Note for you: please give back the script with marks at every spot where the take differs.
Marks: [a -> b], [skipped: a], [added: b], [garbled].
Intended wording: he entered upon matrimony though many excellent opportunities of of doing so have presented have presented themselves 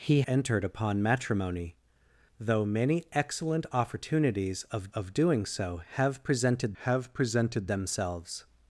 he entered upon matrimony though many excellent opportunities of of doing so have presented have presented themselves